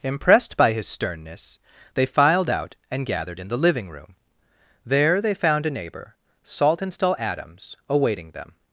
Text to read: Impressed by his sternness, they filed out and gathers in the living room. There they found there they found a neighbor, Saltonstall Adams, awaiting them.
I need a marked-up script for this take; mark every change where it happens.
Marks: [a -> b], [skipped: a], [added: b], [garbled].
Impressed by his sternness, they filed out and [gathers -> gathered] in the living room. There they found [skipped: there they found] a neighbor, Saltonstall Adams, awaiting them.